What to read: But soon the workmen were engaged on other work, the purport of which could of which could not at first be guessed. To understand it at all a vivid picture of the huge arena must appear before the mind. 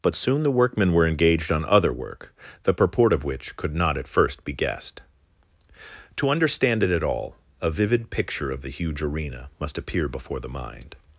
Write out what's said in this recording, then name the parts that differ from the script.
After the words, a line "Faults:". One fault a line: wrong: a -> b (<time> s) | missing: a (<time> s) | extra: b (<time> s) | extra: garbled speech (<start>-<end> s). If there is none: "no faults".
But soon the workmen were engaged on other work, the purport of which could not at first be guessed. To understand it at all a vivid picture of the huge arena must appear before the mind.
Faults:
missing: of which could (3.8 s)